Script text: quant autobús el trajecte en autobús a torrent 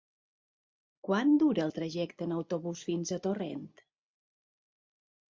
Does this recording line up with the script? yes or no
no